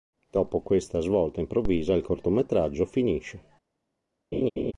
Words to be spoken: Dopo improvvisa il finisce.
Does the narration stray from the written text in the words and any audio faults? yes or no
yes